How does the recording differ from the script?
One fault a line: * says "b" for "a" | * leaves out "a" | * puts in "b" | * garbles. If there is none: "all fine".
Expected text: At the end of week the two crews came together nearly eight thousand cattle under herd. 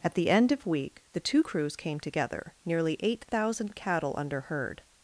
all fine